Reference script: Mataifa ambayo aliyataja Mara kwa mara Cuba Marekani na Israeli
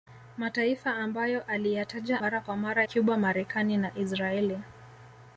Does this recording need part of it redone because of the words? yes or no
no